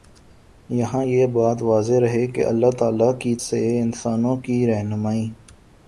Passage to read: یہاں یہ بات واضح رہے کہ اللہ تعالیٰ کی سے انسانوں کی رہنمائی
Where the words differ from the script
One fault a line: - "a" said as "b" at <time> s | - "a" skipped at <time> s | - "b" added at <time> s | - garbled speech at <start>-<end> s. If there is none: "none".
none